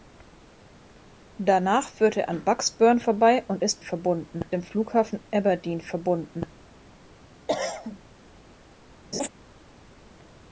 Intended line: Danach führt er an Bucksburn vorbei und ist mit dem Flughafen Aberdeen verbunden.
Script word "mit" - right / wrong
wrong